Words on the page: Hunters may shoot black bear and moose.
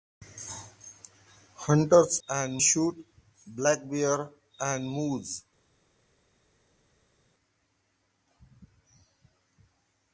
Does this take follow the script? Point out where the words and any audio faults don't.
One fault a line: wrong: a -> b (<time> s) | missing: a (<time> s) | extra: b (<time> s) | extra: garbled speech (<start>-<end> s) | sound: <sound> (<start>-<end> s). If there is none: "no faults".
wrong: may -> and (2.3 s)